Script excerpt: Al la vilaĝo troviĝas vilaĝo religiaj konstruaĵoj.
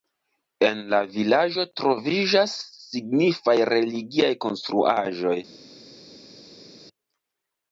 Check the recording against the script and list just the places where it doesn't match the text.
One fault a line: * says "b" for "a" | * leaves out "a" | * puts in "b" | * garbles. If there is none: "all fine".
* says "En" for "Al"
* says "signifaj" for "vilaĝo"